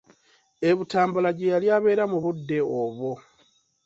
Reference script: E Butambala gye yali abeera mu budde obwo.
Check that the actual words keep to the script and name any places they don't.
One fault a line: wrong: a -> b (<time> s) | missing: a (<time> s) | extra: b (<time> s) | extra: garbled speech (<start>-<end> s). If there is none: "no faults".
no faults